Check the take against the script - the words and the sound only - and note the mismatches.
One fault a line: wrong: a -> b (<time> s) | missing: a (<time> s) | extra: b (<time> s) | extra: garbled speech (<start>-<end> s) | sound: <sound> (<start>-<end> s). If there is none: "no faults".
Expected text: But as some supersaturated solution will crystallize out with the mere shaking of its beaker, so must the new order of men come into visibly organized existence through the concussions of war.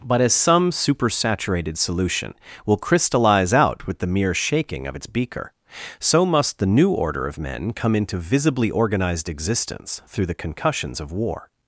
no faults